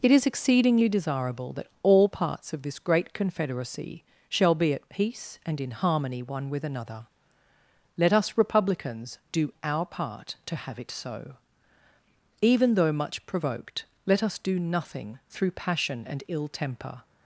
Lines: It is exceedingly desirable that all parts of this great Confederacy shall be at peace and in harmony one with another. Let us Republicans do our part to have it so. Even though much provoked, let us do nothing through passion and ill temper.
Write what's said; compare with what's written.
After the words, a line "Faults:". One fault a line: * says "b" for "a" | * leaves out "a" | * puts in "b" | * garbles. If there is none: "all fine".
It is exceedingly desirable that all parts of this great Confederacy shall be at peace and in harmony one with another. Let us Republicans do our part to have it so. Even though much provoked, let us do nothing through passion and ill temper.
Faults:
all fine